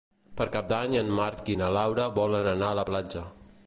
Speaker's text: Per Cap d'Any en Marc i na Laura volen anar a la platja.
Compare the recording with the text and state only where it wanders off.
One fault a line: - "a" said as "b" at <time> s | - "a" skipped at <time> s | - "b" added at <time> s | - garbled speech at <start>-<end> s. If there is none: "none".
none